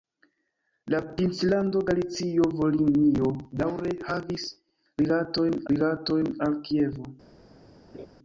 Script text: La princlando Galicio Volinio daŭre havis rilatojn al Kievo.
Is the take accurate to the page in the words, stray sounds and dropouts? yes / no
no